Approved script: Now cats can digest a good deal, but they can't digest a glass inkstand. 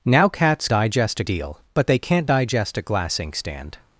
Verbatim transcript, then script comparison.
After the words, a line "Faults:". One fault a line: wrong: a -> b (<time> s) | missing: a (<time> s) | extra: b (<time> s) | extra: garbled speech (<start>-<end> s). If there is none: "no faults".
Now cats digest a deal, but they can't digest a glass inkstand.
Faults:
missing: can (0.7 s)
missing: good (1.2 s)